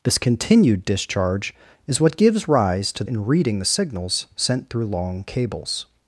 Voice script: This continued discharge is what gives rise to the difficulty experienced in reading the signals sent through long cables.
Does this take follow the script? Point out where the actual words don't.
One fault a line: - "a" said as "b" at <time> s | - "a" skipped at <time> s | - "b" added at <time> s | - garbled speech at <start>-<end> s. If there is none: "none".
- "the difficulty experienced" skipped at 3.0 s